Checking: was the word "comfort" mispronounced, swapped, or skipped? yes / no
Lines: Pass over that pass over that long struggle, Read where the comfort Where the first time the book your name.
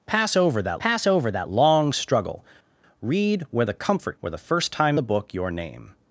no